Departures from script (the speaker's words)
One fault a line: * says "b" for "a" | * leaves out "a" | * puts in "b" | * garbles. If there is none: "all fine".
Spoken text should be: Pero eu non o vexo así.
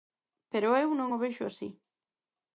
all fine